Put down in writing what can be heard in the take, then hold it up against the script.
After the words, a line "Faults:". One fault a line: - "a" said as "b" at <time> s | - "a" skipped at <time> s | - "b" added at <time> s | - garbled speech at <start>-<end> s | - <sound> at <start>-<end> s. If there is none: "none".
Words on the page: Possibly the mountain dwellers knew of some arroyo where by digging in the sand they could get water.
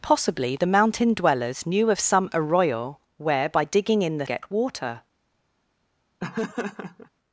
Possibly the mountain dwellers knew of some arroyo where by digging in the get water.
Faults:
- "sand they could" skipped at 4.3 s
- laugh at 6.2-7.1 s